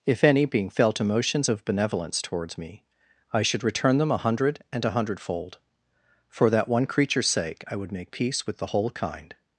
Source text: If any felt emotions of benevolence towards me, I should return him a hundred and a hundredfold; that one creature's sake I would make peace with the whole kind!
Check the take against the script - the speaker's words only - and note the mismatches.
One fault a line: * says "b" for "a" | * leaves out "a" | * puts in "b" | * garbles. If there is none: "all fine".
* puts in "being"
* says "them" for "him"
* puts in "for"